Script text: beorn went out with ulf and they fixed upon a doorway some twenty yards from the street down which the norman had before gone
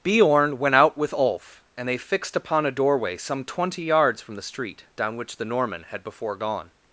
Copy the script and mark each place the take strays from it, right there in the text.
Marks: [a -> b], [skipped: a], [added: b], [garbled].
beorn went out with ulf and they fixed upon a doorway some twenty yards from the street down which the norman had before gone